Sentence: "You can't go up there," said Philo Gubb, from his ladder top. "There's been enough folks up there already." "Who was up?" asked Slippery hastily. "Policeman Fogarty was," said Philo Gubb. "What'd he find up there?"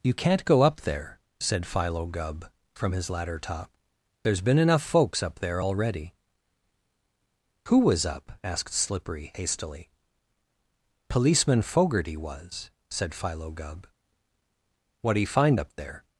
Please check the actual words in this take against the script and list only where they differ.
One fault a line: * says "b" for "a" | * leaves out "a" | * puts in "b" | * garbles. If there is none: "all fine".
all fine